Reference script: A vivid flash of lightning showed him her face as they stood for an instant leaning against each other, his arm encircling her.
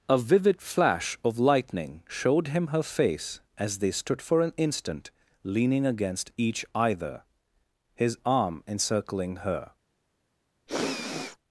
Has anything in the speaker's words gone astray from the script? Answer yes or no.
yes